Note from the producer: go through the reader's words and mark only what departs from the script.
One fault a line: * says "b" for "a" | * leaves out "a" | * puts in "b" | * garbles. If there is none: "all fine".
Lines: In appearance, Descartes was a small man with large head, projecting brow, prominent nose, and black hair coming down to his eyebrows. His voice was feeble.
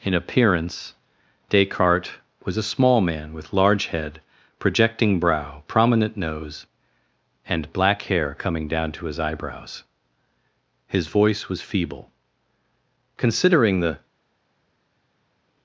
* puts in "Considering the"